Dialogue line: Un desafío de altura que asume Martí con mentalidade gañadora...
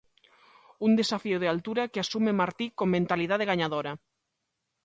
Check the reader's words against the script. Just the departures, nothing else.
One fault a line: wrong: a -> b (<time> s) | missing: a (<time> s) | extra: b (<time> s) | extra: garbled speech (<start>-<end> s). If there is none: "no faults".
no faults